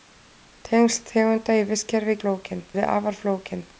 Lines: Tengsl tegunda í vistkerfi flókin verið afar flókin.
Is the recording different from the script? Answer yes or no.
no